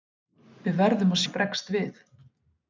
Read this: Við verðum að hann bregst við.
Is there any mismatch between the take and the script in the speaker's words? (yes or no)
no